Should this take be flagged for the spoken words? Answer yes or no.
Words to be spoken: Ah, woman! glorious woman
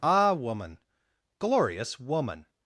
no